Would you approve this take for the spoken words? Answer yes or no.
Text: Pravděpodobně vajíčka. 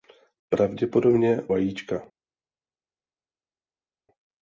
yes